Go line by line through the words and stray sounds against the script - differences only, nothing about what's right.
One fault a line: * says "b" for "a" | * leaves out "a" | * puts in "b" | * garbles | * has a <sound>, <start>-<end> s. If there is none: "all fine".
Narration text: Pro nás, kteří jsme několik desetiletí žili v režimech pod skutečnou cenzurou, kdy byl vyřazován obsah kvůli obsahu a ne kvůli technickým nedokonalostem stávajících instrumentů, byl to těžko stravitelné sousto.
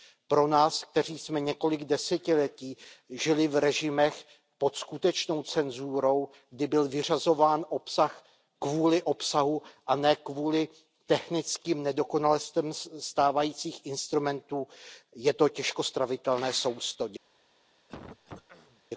* says "je" for "byl"
* has a throat clearing, 17.9-18.8 s